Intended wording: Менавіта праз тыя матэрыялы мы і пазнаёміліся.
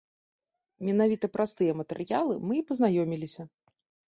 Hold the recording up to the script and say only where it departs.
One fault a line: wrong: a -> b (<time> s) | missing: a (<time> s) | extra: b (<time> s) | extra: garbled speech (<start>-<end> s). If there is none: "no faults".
no faults